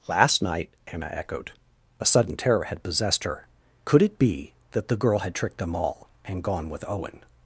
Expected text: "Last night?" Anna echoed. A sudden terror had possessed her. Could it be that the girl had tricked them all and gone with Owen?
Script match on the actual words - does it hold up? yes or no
yes